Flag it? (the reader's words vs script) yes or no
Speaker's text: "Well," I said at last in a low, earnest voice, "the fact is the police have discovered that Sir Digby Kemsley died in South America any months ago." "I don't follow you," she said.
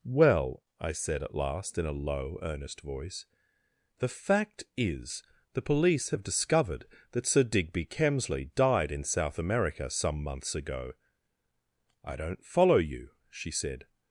yes